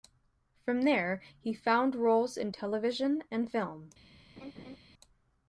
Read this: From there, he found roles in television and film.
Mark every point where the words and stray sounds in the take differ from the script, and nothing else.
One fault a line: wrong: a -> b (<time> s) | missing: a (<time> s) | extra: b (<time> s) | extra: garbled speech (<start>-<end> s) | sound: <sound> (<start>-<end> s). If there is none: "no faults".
sound: laugh (4.4-4.8 s)